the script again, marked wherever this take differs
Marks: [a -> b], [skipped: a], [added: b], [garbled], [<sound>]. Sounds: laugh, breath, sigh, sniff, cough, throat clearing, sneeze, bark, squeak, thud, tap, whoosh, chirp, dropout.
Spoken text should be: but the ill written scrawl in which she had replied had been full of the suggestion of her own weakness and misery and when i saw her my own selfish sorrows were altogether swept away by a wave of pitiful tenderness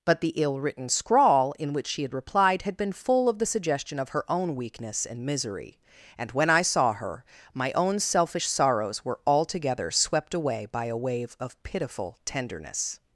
but the ill written scrawl in which she had replied had been full of the suggestion of her own weakness and misery and when i saw her my own selfish sorrows were altogether swept away by a wave of pitiful tenderness